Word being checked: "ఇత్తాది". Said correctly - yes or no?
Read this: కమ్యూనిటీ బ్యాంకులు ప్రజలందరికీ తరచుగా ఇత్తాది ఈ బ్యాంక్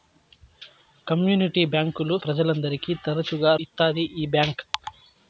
yes